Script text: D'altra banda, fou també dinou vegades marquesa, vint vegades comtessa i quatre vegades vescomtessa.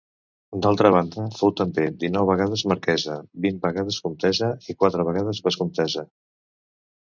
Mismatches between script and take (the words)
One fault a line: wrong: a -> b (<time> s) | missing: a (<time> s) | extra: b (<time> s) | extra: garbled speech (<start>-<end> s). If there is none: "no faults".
no faults